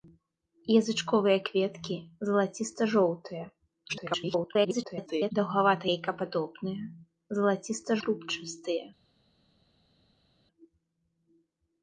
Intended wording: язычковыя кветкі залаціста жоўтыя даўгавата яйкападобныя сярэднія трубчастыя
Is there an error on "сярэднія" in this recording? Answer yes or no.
yes